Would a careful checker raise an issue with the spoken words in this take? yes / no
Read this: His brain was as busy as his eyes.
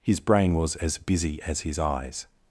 no